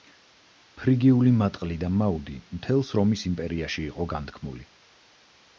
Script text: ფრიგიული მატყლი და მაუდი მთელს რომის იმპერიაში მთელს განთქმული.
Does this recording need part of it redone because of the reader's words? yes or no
yes